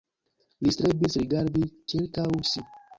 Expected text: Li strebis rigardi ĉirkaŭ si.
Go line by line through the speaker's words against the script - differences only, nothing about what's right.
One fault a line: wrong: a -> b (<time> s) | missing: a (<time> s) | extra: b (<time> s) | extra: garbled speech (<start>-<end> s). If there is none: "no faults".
no faults